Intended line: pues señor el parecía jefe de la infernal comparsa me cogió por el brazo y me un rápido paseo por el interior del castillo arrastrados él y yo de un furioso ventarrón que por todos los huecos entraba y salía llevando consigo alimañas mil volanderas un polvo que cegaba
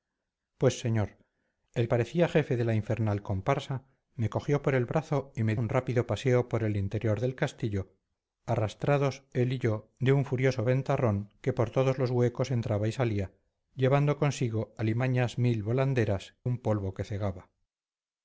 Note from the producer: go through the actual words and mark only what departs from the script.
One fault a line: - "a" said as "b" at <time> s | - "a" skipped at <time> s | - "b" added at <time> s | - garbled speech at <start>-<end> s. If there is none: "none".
none